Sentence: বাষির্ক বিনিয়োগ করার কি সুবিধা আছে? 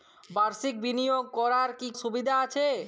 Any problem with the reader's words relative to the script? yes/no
no